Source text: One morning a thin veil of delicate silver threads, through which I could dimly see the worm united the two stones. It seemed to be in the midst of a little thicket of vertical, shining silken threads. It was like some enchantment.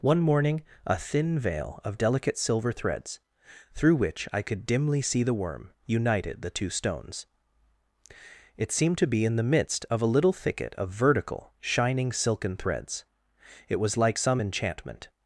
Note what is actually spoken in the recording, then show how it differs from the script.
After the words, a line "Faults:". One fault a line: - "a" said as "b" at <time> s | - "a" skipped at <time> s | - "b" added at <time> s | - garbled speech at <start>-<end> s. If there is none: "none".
One morning a thin veil of delicate silver threads, through which I could dimly see the worm united the two stones. It seemed to be in the midst of a little thicket of vertical, shining silken threads. It was like some enchantment.
Faults:
none